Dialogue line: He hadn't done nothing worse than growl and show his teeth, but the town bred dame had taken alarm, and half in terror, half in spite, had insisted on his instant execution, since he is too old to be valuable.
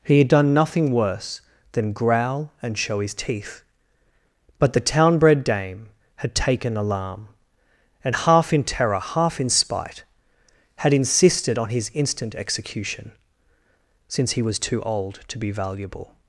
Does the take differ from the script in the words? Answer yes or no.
yes